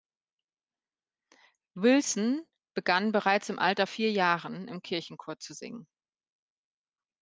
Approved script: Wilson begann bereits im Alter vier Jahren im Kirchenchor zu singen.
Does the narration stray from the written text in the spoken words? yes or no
no